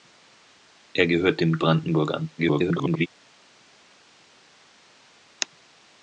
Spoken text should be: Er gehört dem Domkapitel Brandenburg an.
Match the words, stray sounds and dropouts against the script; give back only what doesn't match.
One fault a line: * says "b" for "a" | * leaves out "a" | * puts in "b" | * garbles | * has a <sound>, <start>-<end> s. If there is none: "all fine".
* leaves out "Domkapitel"
* garbles